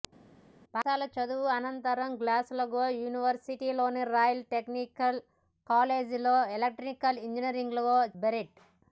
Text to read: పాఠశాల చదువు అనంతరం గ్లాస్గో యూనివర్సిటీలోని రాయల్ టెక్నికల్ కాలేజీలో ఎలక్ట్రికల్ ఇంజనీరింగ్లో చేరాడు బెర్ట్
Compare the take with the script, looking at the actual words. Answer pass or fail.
fail